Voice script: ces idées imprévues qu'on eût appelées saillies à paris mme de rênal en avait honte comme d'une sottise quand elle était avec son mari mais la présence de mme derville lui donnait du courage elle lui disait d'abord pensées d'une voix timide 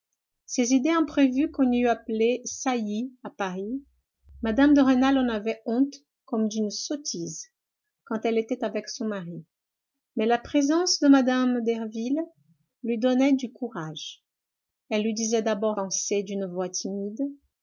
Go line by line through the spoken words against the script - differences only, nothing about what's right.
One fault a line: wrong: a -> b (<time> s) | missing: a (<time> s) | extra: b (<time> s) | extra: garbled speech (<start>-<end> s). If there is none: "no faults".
no faults